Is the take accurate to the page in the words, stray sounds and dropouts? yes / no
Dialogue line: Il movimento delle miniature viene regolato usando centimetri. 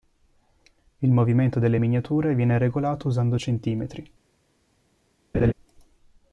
no